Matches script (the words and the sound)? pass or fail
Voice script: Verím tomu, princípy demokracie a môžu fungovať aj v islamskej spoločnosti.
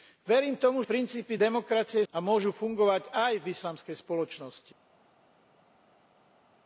pass